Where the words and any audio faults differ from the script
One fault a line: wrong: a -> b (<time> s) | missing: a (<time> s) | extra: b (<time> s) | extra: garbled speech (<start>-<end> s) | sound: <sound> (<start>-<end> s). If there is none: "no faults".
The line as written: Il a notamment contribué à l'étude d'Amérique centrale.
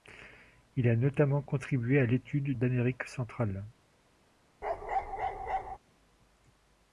sound: bark (4.6-5.8 s)